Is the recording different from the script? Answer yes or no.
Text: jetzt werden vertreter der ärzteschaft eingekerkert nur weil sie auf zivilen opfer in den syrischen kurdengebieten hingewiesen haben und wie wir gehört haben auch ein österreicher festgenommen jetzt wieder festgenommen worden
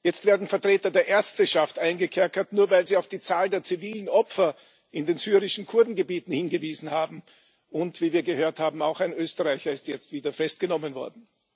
yes